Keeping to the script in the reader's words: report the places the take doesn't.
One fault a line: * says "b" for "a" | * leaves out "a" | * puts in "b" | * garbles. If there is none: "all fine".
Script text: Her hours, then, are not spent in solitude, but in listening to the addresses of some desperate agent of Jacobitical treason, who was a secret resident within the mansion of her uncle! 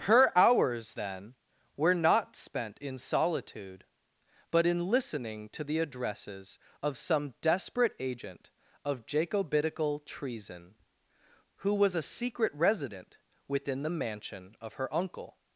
* says "were" for "are"